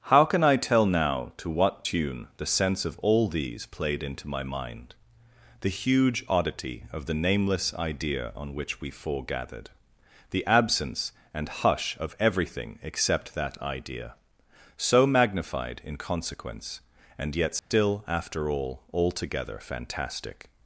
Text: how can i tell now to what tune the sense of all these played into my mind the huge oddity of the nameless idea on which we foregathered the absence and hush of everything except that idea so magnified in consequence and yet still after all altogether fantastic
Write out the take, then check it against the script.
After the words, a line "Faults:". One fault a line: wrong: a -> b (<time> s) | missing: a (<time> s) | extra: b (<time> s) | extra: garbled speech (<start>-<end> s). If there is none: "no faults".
how can i tell now to what tune the sense of all these played into my mind the huge oddity of the nameless idea on which we foregathered the absence and hush of everything except that idea so magnified in consequence and yet still after all altogether fantastic
Faults:
no faults